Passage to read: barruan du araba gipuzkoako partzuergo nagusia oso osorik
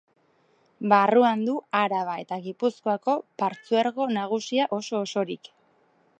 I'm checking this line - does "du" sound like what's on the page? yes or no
yes